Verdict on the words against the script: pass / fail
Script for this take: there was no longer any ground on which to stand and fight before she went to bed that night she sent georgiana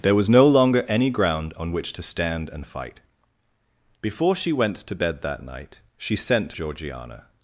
pass